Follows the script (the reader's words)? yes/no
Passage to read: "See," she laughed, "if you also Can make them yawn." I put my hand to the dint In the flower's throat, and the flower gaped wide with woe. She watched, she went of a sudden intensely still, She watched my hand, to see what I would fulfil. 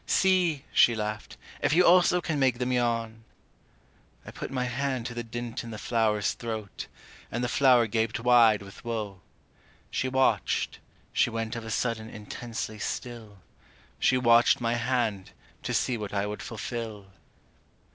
yes